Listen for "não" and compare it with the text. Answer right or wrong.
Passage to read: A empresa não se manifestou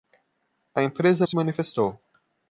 wrong